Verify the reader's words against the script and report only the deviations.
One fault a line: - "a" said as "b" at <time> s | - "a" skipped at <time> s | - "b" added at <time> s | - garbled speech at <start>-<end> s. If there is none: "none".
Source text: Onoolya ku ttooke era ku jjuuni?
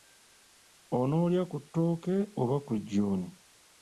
- "era" said as "oba" at 2.4 s